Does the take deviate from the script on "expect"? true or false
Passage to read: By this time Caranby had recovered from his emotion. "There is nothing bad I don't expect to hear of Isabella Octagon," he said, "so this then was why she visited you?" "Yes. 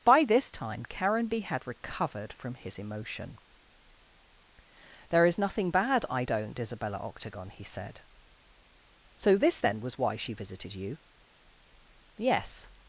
true